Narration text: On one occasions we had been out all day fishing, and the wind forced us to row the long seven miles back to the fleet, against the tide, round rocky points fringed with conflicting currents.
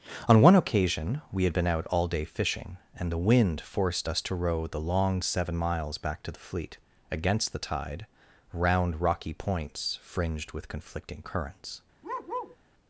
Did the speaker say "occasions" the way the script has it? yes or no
no